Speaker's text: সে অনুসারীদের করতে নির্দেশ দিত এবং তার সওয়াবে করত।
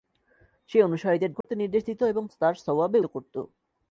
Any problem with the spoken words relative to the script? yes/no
no